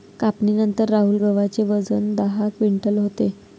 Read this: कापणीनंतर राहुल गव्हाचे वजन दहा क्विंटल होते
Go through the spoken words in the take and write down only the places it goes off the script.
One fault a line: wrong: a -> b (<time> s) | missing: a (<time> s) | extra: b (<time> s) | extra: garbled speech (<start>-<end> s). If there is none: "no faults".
no faults